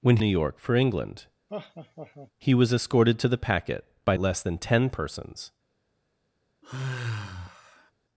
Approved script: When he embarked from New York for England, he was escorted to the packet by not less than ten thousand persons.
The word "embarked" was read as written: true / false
false